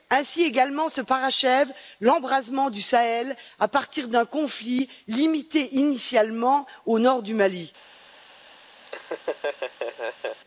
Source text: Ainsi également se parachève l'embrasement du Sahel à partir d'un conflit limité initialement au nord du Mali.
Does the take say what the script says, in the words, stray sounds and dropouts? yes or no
no